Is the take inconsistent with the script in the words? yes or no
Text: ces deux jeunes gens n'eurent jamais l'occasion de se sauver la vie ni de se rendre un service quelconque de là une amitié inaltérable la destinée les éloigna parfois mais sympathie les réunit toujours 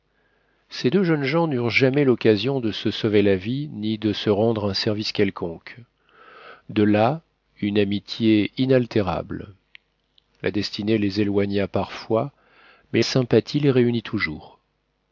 no